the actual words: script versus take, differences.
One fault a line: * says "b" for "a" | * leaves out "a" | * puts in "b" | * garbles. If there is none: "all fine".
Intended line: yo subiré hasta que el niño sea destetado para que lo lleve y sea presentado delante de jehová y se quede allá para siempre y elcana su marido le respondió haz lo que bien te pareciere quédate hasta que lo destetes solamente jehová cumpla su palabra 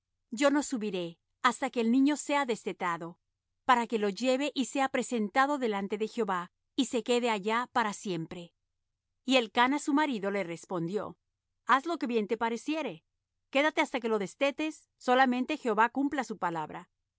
* puts in "no"